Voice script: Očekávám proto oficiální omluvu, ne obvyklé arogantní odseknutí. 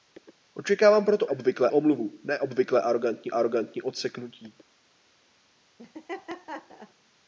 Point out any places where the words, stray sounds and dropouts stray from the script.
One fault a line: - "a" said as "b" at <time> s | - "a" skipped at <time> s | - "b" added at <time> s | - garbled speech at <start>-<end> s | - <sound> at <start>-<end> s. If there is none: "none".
- "oficiální" said as "obvyklé" at 1.3 s
- "arogantní" added at 3.3 s
- laugh at 5.8-6.9 s